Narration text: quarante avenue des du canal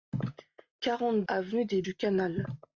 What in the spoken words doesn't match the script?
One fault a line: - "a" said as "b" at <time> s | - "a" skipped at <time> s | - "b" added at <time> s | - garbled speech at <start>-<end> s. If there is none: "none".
none